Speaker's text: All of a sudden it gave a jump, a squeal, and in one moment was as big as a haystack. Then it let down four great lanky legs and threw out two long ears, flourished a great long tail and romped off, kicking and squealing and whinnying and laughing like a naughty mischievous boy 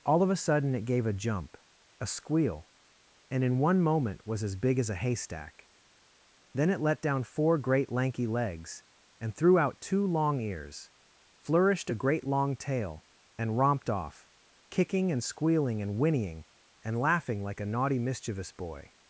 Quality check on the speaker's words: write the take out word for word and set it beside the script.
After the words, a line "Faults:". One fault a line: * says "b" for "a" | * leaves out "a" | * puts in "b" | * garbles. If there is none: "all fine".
All of a sudden it gave a jump, a squeal, and in one moment was as big as a haystack. Then it let down four great lanky legs and threw out two long ears, flourished a great long tail and romped off, kicking and squealing and whinnying and laughing like a naughty mischievous boy
Faults:
all fine